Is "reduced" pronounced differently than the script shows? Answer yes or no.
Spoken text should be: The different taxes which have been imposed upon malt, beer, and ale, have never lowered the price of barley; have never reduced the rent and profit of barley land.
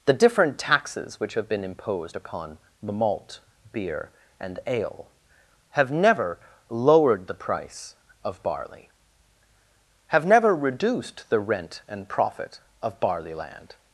no